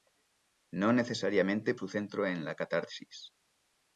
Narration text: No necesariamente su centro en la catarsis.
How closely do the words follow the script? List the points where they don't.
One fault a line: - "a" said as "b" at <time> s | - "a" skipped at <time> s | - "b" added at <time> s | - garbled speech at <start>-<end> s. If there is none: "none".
none